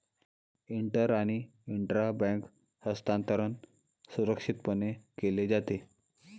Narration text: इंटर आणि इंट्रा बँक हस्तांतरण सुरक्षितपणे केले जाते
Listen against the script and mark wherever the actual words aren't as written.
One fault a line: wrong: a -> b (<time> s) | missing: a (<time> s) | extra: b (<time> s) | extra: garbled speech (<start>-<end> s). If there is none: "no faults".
no faults